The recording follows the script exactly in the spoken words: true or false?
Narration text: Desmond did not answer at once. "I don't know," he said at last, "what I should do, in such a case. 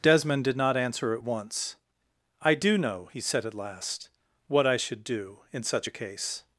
false